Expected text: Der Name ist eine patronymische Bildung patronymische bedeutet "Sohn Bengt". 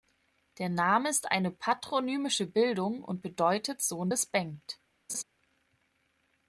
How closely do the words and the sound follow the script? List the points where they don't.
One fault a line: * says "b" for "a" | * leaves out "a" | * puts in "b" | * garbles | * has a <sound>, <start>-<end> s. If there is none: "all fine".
* says "und" for "patronymische"
* puts in "des"
* has a laugh, 5.1-5.2 s